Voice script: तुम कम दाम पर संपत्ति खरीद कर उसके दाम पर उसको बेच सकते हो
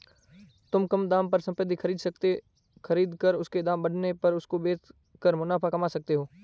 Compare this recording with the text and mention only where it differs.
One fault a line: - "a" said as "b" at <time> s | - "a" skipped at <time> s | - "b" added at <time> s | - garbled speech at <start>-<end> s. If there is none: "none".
- "बढ़ने" added at 3.8 s
- "कर मुनाफा कमा" added at 5.2 s